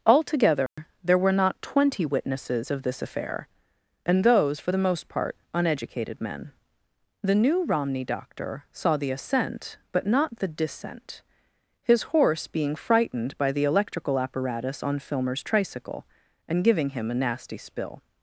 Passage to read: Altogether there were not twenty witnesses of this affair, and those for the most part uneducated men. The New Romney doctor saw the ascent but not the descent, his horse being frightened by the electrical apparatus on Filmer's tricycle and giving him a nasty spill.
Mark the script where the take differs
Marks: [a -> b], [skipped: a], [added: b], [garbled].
Altogether there were not twenty witnesses of this affair, and those for the most part uneducated men. The New Romney doctor saw the ascent but not the descent, his horse being frightened by the electrical apparatus on Filmer's tricycle and giving him a nasty spill.